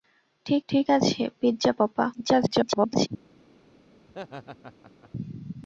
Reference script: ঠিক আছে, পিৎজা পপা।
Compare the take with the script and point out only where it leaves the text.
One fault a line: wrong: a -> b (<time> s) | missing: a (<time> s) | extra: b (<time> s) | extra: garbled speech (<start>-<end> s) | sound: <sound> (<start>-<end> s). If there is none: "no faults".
extra: ঠিক (0.7 s)
extra: garbled speech (2.1-3.1 s)
sound: laugh (4.1-5.1 s)